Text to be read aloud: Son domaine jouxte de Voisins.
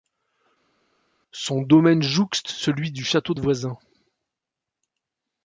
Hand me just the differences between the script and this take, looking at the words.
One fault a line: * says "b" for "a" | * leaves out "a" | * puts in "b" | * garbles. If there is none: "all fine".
* puts in "celui du château"